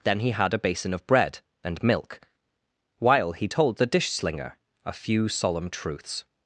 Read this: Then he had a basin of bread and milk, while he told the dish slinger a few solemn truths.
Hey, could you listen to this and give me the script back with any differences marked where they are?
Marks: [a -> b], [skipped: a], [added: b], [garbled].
Then he had a basin of bread and milk, while he told the dish slinger a few solemn truths.